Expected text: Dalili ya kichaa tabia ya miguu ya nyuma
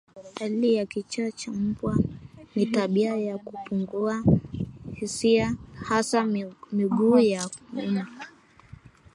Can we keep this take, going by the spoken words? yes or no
no